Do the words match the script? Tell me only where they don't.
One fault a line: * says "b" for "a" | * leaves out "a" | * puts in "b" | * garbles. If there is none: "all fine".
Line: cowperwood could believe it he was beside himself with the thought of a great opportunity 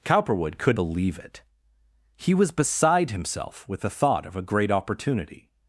all fine